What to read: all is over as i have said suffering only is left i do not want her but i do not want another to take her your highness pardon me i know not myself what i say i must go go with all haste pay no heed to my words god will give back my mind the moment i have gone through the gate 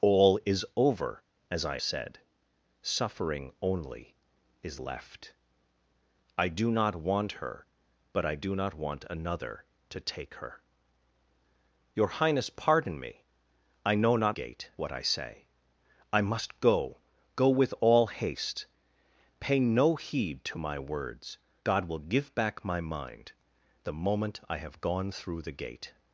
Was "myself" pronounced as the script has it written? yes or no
no